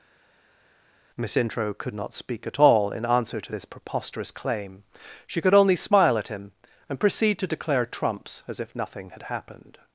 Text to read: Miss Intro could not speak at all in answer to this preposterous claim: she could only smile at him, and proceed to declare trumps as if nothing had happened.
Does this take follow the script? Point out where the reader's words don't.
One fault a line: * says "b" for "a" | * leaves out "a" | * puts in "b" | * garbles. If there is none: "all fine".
all fine